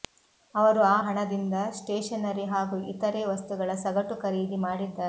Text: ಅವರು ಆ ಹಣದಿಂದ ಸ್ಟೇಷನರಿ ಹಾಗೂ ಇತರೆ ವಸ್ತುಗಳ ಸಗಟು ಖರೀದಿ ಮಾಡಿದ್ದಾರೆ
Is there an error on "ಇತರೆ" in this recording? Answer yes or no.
no